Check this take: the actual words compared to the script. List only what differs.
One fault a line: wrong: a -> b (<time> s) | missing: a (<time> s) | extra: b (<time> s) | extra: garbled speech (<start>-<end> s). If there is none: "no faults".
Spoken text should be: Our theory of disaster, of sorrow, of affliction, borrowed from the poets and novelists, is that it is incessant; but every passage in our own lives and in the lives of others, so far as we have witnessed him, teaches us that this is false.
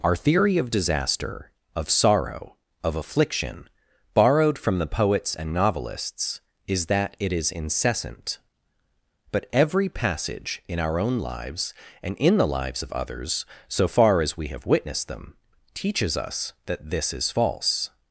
wrong: him -> them (15.1 s)